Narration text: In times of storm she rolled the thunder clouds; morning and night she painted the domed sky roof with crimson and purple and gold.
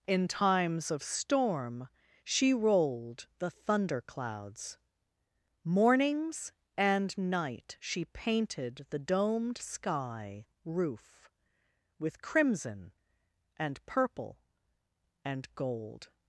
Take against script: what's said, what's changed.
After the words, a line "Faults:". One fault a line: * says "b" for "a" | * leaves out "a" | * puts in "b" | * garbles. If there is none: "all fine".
In times of storm she rolled the thunder clouds; mornings and night she painted the domed sky roof with crimson and purple and gold.
Faults:
* says "mornings" for "morning"